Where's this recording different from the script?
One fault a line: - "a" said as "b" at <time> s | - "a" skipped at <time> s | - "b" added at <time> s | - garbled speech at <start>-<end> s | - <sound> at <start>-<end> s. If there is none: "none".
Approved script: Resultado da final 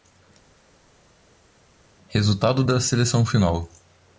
- "seleção" added at 2.8 s